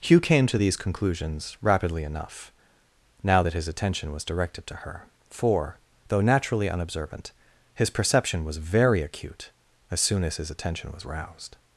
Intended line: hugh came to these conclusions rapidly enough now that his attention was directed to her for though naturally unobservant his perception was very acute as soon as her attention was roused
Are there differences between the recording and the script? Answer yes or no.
yes